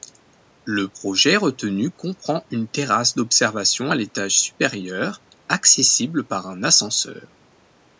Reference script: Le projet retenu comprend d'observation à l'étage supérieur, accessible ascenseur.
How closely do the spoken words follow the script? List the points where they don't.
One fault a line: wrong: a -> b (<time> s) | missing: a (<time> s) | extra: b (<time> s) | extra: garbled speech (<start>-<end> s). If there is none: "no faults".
extra: une terrasse (2.5 s)
extra: par un (6.3 s)